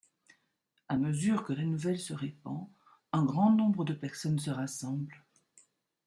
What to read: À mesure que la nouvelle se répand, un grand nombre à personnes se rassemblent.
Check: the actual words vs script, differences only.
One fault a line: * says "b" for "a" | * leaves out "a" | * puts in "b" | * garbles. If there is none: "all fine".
* says "de" for "à"